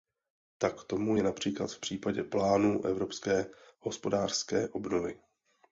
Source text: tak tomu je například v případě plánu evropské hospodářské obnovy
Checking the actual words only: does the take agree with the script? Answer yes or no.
yes